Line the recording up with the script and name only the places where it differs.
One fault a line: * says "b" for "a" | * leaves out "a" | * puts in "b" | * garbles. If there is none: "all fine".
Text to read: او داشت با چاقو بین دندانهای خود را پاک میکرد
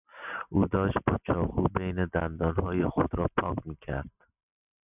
all fine